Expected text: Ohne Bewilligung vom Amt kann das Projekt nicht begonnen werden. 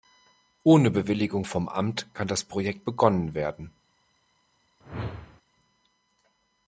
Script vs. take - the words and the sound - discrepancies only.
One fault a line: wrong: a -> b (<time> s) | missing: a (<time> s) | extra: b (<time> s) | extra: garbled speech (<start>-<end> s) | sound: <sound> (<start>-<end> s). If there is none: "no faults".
missing: nicht (2.9 s)
sound: whoosh (4.8-5.4 s)